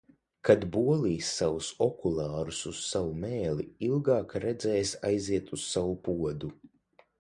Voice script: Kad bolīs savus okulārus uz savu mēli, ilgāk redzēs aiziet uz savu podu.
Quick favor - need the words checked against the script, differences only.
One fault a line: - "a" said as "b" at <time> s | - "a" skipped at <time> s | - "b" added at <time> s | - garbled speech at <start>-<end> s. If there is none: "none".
none